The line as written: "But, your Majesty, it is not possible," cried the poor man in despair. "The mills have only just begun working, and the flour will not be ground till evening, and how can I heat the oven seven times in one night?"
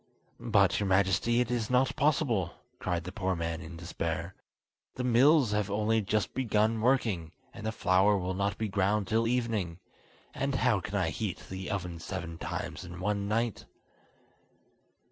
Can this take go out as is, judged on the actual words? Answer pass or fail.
pass